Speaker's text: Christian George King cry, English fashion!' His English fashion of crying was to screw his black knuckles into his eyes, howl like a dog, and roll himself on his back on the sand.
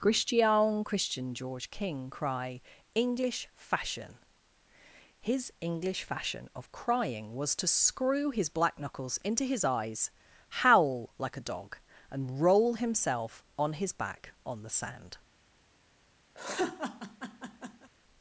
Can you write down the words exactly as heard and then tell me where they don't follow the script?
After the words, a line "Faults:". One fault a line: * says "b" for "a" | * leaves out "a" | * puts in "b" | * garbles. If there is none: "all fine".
Christian christian George King cry, English fashion!' His English fashion of crying was to screw his black knuckles into his eyes, howl like a dog, and roll himself on his back on the sand.
Faults:
* puts in "christian"